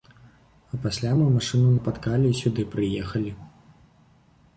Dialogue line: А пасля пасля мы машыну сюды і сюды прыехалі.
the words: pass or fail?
fail